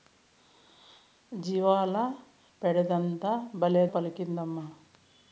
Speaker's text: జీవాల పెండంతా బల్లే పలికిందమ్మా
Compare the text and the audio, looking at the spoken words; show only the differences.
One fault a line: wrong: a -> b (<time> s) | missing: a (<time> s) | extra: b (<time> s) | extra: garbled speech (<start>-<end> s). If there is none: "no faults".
no faults